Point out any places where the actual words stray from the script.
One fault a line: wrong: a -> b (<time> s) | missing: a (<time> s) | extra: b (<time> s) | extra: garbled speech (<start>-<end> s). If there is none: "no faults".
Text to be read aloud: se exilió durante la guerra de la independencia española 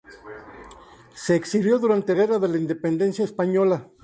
missing: la (2.1 s)